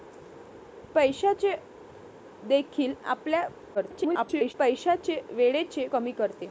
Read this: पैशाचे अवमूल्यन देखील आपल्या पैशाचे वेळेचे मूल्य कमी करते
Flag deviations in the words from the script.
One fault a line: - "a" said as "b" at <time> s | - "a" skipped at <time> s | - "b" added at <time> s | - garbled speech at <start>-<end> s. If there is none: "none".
- "अवमूल्यन" skipped at 1.6 s
- garbled speech at 3.7-4.5 s
- "मूल्य" skipped at 5.9 s